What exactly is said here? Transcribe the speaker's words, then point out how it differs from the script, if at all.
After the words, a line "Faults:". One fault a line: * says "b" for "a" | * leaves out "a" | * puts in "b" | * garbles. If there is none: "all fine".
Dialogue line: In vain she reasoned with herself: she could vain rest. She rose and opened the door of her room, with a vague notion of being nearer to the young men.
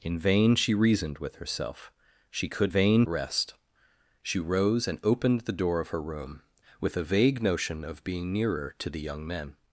In vain she reasoned with herself: she could vain rest. She rose and opened the door of her room, with a vague notion of being nearer to the young men.
Faults:
all fine